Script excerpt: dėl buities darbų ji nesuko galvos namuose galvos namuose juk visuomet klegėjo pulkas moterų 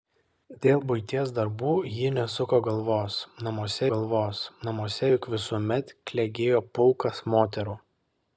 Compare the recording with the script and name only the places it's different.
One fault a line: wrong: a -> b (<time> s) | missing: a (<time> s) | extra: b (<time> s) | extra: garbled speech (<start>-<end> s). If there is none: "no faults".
no faults